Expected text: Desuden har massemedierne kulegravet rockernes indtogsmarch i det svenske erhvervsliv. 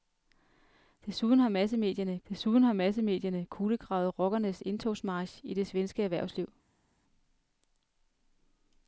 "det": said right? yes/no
yes